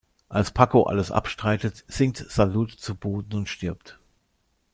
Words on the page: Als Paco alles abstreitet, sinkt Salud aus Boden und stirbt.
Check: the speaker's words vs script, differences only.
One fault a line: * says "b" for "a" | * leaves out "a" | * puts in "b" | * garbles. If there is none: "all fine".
* says "zu" for "aus"